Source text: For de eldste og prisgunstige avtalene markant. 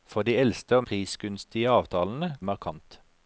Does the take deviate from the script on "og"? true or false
false